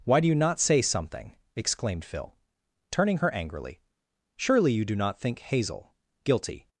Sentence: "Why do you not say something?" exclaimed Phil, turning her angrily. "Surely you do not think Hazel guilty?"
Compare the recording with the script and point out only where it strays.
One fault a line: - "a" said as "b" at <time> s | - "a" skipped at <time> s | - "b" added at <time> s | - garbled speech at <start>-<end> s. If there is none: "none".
none